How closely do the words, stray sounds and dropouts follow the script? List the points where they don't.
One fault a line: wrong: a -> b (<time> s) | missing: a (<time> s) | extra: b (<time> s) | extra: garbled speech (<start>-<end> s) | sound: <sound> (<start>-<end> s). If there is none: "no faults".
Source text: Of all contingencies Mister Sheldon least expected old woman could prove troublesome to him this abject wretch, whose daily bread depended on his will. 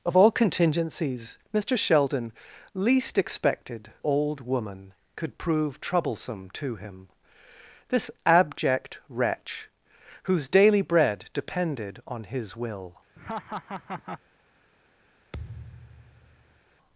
sound: laugh (13.2-14.2 s)
sound: thud (15.3-16.6 s)